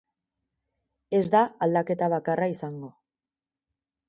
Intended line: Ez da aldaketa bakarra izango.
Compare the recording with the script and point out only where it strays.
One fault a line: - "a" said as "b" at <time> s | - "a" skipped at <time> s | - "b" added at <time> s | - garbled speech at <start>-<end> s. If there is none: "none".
none